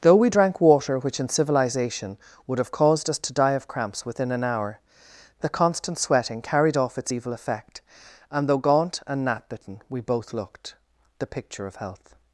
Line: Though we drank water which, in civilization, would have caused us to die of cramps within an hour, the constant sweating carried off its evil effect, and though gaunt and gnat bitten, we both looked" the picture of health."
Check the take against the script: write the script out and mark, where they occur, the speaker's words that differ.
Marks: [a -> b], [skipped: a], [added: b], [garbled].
Though we drank water which, in civilization, would have caused us to die of cramps within an hour, the constant sweating carried off its evil effect, and though gaunt and gnat bitten, we both looked" the picture of health."